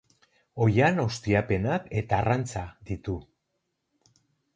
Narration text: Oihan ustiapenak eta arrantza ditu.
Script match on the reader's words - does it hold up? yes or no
yes